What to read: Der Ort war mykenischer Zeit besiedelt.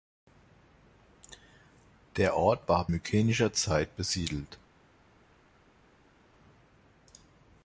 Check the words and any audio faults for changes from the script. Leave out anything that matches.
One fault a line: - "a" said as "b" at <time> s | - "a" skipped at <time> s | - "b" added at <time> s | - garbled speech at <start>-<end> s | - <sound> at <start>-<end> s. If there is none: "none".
none